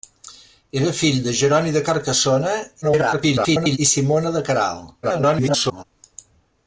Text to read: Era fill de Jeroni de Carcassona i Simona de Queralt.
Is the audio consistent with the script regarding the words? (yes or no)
no